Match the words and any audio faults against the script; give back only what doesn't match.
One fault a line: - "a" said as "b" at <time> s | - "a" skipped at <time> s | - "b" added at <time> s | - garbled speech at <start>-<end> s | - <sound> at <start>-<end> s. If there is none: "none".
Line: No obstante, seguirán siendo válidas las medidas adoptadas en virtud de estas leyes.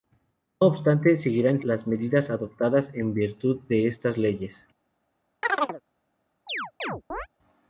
- "siendo válidas" skipped at 1.6 s
- chirp at 5.4-5.8 s
- chirp at 6.5-7.3 s